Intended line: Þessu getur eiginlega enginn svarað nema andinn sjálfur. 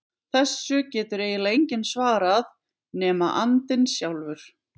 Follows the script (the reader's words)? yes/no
yes